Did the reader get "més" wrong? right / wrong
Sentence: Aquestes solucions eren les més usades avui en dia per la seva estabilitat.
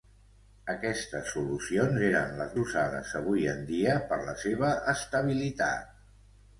wrong